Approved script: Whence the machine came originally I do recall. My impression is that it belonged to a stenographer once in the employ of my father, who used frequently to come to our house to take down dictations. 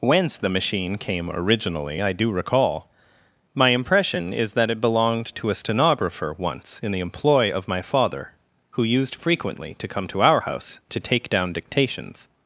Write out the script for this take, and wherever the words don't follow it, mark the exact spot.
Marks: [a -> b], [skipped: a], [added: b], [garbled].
Whence the machine came originally I do recall. My impression is that it belonged to a stenographer once in the employ of my father, who used frequently to come to our house to take down dictations.